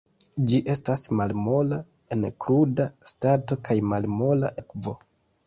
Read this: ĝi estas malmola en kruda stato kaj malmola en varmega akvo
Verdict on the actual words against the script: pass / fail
fail